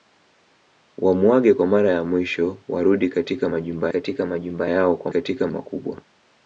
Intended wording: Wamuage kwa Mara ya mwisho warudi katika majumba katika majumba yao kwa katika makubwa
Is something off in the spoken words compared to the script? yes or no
no